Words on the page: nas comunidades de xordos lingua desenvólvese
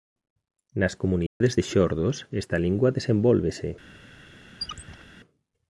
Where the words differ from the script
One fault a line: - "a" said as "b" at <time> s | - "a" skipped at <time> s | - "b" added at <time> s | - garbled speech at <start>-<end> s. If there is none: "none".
- "esta" added at 2.4 s